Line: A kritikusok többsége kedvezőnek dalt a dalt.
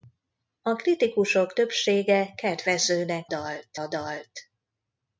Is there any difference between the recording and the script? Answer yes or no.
no